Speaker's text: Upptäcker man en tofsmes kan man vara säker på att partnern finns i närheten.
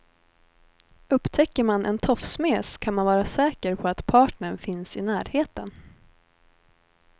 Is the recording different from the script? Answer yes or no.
no